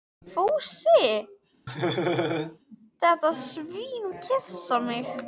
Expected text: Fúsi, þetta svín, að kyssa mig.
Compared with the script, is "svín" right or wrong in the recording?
right